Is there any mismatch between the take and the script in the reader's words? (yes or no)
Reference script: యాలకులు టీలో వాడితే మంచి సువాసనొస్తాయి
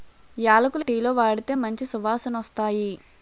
no